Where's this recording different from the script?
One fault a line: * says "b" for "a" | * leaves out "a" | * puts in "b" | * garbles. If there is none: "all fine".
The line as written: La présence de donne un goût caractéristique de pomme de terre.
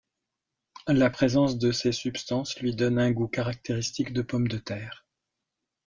* puts in "ces substances lui"